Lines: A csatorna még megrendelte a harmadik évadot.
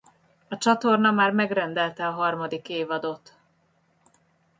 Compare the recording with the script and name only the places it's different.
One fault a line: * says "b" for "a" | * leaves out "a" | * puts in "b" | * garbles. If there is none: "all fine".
* says "már" for "még"